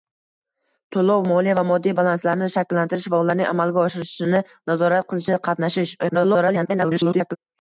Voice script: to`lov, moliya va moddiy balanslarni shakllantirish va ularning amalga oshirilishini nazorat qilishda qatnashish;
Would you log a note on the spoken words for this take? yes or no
yes